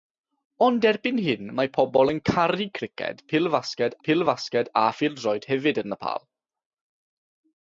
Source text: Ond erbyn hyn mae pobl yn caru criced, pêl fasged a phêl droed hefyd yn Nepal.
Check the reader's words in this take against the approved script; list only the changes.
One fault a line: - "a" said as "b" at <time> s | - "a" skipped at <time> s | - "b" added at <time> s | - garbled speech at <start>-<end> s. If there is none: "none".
- "pêl fasged" added at 4.1 s